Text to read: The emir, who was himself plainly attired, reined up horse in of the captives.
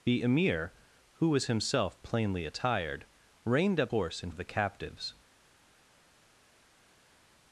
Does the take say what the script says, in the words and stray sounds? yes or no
yes